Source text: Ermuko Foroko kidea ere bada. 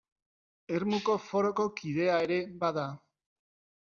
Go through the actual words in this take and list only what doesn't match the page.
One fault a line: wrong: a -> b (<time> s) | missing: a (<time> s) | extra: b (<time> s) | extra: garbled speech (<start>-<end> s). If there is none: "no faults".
no faults